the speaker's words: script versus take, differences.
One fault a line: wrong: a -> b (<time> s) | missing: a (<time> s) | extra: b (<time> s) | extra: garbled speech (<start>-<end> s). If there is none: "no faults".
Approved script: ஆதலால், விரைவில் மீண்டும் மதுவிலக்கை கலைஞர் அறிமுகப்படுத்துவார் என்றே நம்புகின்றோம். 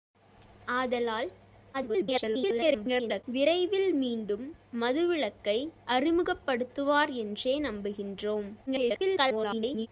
extra: garbled speech (1.7-3.2 s)
missing: கலைஞர் (5.7 s)
extra: garbled speech (8.7-9.9 s)